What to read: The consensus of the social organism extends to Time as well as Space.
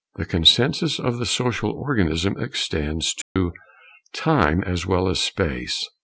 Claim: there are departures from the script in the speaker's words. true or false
false